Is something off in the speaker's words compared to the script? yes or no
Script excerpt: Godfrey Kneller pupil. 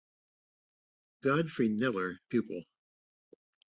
no